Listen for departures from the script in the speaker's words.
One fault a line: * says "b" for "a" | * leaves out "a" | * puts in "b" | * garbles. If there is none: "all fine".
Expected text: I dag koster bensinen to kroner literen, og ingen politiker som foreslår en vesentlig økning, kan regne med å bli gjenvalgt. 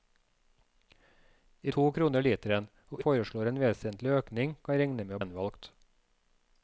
* leaves out "dag koster bensinen"
* leaves out "ingen politiker som"
* leaves out "bli"